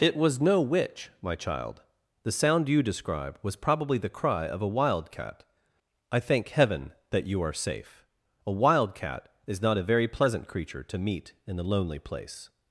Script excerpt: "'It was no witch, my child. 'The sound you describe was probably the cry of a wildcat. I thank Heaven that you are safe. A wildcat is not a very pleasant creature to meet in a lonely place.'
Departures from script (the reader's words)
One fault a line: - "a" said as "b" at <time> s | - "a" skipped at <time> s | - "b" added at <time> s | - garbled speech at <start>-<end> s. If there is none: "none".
none